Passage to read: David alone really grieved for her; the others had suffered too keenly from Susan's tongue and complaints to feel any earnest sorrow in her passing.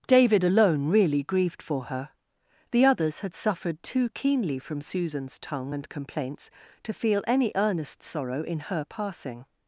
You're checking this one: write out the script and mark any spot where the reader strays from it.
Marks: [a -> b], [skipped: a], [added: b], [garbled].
David alone really grieved for her; the others had suffered too keenly from Susan's tongue and complaints to feel any earnest sorrow in her passing.